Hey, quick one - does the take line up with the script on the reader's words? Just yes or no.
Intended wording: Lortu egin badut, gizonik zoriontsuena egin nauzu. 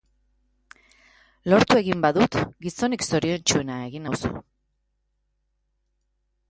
yes